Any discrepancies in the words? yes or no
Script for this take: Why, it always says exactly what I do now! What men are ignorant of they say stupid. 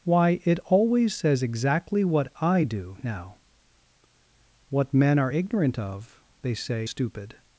no